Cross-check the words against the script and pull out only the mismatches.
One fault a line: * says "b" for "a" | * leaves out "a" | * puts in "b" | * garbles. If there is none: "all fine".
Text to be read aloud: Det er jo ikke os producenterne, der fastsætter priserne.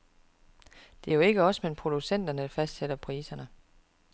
* puts in "men"